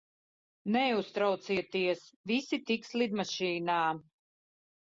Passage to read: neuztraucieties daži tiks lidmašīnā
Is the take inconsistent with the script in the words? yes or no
yes